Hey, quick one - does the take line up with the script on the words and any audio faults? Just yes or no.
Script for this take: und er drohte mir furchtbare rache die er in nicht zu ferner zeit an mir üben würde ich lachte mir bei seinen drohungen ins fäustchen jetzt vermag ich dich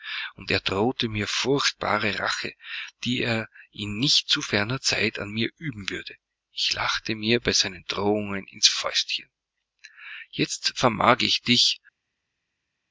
yes